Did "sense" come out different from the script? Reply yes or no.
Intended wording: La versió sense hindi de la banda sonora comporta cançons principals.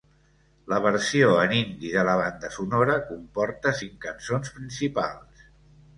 yes